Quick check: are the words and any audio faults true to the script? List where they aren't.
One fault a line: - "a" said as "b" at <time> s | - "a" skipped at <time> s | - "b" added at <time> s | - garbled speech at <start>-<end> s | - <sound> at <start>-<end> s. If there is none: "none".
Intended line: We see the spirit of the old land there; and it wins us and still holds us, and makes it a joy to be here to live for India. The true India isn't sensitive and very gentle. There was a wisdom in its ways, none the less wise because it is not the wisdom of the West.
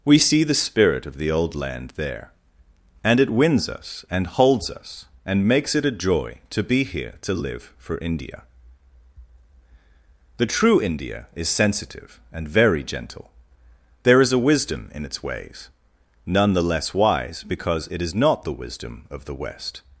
- "still" skipped at 4.2 s
- "isn't" said as "is" at 11.3 s
- "was" said as "is" at 14.2 s